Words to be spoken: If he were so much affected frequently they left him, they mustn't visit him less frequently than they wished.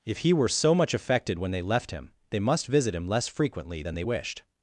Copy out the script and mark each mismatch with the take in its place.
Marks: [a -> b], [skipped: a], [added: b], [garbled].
If he were so much affected [frequently -> when] they left him, they [mustn't -> must] visit him less frequently than they wished.